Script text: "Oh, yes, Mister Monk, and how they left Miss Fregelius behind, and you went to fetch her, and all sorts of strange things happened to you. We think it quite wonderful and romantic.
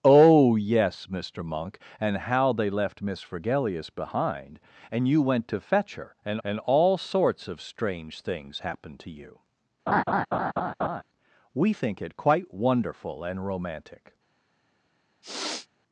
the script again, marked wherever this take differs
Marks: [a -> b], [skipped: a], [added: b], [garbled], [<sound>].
"Oh, yes, Mister Monk, and how they left Miss Fregelius behind, and you went to fetch her, and [added: and] all sorts of strange things happened to you. [laugh] We think it quite wonderful and romantic. [sniff]